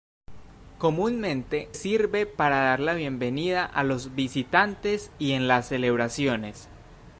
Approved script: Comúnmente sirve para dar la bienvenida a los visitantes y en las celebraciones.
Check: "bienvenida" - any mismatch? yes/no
no